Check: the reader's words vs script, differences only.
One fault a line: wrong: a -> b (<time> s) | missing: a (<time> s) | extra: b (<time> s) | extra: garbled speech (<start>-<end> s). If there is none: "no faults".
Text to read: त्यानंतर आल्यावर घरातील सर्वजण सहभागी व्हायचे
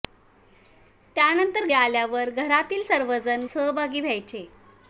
no faults